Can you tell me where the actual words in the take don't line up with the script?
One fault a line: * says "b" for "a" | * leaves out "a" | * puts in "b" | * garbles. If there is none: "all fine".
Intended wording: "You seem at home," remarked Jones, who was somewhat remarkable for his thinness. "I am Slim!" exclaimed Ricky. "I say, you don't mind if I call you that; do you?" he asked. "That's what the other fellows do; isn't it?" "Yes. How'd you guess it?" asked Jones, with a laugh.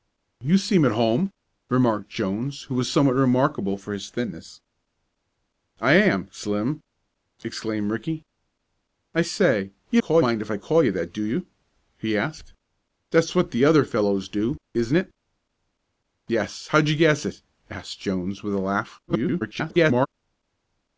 * says "call" for "don't"
* garbles